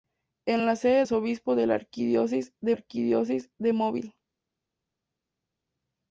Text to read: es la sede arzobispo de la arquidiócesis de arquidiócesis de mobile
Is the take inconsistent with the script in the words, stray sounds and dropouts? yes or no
no